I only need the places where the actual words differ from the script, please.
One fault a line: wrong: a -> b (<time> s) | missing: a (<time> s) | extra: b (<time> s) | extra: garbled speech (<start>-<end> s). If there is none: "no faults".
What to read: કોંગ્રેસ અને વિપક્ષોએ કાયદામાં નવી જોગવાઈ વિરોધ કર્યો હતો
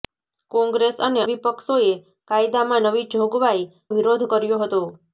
no faults